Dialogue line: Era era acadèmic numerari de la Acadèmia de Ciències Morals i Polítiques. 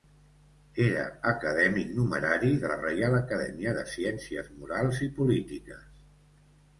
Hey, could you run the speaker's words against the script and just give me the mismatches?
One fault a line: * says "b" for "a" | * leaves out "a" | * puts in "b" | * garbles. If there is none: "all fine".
* leaves out "era"
* puts in "Reial"